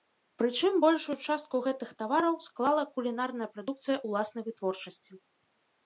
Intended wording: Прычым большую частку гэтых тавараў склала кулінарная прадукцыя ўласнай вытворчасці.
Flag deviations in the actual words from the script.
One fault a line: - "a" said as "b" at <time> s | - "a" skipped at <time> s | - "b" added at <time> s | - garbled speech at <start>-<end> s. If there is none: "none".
none